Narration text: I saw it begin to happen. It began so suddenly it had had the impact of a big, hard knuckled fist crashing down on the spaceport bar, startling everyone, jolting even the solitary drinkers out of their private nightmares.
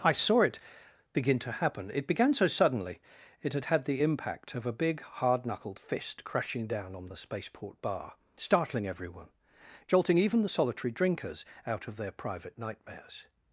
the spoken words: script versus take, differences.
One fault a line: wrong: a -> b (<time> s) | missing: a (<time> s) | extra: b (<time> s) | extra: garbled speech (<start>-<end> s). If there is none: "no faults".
no faults